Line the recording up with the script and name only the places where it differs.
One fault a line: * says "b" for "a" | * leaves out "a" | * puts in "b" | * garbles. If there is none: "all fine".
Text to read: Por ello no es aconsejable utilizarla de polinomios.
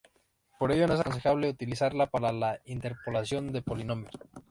* puts in "para la interpolación"